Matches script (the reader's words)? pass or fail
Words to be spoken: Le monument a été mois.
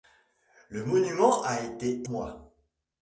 pass